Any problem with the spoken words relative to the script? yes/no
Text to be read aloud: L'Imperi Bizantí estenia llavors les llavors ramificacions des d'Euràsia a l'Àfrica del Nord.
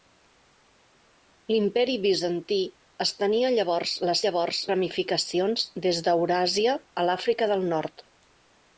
no